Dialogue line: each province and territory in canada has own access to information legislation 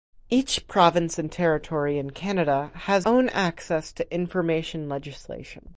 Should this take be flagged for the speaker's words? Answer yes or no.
no